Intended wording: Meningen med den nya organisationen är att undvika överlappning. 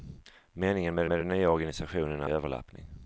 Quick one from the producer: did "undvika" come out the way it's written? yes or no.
no